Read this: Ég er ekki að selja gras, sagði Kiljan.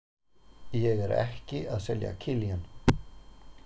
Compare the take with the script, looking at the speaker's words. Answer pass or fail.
fail